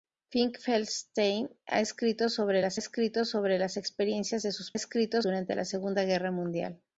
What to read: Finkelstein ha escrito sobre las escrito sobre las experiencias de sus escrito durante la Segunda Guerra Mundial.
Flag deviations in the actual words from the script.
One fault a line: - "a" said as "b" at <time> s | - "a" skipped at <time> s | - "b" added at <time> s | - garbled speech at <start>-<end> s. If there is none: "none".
none